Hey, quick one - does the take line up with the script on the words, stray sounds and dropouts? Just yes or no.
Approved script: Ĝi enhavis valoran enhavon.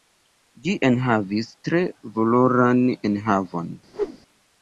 no